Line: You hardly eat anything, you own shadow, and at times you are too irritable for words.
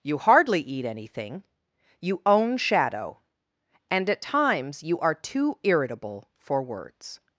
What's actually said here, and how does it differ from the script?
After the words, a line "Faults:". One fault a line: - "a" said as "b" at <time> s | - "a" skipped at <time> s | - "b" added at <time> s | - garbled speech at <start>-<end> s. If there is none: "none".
You hardly eat anything, you own shadow, and at times you are too irritable for words.
Faults:
none